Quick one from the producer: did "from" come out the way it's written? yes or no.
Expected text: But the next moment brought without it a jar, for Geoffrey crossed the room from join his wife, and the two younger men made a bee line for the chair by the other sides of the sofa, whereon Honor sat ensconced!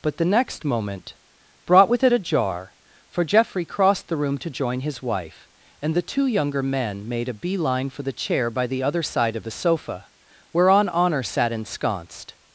no